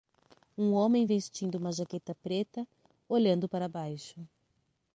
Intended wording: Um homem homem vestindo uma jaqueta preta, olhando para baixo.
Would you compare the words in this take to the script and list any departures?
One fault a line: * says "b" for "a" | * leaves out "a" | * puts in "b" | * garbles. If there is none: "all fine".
* leaves out "homem"